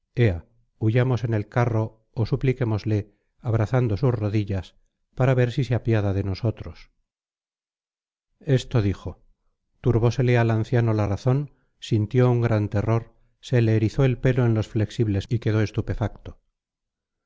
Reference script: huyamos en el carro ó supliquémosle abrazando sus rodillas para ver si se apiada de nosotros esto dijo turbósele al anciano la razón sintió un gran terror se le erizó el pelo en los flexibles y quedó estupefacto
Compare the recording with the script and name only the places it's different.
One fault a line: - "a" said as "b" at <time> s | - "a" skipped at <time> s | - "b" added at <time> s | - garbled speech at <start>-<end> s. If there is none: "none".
none